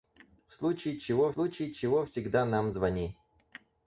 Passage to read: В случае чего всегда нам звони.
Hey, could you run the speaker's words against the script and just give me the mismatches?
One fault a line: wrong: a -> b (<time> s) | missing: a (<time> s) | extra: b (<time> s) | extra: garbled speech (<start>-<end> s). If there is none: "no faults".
extra: случае чего (1.3 s)